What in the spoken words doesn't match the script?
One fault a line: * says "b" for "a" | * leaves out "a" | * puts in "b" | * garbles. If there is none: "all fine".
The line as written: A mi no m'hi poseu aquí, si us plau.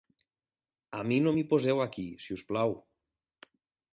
all fine